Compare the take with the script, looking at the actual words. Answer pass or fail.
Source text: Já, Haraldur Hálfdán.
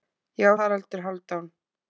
pass